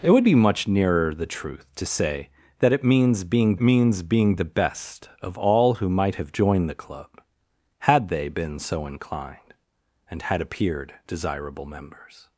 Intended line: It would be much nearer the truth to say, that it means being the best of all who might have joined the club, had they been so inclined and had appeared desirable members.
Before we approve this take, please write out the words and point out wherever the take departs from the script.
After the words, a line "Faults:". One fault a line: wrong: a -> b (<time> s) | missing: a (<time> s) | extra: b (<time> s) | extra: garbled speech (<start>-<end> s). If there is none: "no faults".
It would be much nearer the truth to say, that it means being means being the best of all who might have joined the club, had they been so inclined and had appeared desirable members.
Faults:
extra: means being (3.6 s)